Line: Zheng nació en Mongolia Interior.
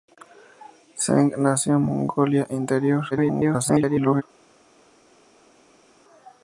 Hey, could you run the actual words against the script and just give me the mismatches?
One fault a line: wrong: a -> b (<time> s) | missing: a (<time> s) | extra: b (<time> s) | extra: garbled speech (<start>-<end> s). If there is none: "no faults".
extra: garbled speech (3.1-4.2 s)